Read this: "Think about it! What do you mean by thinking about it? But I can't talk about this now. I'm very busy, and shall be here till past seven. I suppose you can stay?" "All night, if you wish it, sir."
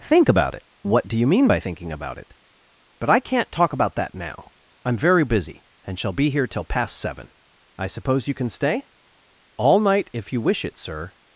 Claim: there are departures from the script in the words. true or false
true